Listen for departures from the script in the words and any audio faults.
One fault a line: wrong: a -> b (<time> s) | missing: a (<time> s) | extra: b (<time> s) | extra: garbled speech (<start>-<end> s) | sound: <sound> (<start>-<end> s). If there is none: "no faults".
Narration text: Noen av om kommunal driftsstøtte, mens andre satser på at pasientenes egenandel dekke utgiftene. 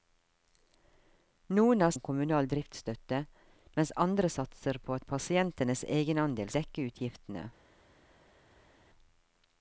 no faults